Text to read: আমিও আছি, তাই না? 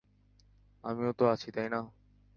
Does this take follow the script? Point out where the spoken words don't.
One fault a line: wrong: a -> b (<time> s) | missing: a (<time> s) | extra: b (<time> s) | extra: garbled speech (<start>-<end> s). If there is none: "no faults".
extra: তো (1.1 s)